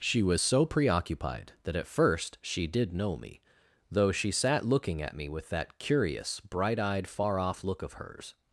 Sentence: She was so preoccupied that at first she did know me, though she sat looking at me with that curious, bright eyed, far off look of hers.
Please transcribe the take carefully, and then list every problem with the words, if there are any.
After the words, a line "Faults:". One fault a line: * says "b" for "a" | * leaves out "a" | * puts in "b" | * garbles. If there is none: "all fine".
She was so preoccupied that at first she did know me, though she sat looking at me with that curious, bright eyed, far off look of hers.
Faults:
all fine